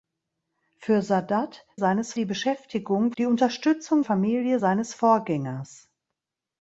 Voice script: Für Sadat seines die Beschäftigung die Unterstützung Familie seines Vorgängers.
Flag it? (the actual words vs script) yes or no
no